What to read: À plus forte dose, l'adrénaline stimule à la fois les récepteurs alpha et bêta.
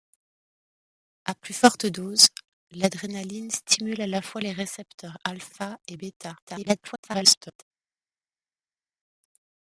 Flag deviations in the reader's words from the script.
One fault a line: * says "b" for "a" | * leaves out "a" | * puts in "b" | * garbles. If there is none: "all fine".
* garbles